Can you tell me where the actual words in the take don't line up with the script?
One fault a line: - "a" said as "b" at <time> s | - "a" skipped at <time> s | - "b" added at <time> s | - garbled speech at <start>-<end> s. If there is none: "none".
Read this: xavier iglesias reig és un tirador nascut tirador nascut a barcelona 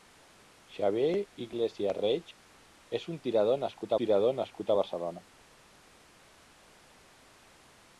none